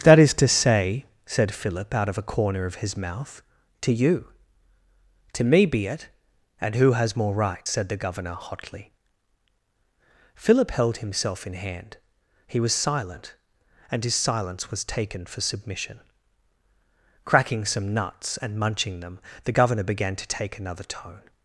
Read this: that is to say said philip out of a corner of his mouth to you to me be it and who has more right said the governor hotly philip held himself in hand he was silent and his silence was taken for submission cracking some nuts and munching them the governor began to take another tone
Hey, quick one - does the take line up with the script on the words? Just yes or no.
yes